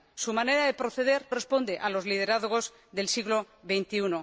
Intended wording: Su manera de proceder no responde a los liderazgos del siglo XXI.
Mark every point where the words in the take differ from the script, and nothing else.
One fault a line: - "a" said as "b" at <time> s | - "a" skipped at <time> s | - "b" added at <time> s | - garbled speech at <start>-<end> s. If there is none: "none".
- "no" skipped at 1.2 s